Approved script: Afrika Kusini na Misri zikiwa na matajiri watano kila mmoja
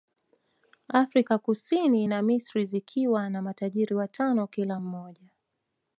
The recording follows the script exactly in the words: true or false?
true